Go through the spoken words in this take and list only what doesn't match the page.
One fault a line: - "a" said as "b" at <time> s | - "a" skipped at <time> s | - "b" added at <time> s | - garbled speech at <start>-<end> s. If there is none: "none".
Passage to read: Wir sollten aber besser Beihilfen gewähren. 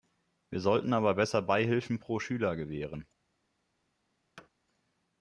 - "pro Schüler" added at 2.0 s